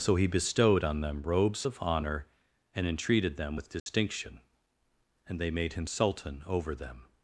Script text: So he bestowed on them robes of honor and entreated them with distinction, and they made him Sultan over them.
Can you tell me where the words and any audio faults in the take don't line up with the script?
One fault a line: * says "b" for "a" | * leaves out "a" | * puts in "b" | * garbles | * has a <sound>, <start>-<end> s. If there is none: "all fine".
* has a dropout, 3.8-3.9 s